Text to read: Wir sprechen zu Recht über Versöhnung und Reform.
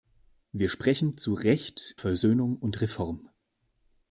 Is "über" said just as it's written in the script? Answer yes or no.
no